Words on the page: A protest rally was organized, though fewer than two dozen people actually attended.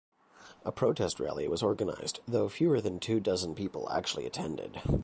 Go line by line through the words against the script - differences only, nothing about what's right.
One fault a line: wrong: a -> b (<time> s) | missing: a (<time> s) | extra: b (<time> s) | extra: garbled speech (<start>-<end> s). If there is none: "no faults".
no faults